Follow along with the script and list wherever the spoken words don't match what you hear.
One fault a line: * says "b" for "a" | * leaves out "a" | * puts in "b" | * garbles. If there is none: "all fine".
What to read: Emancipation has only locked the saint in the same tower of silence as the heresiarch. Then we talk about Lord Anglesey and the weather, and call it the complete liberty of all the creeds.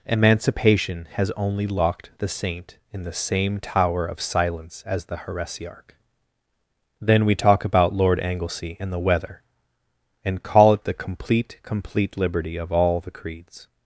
* puts in "complete"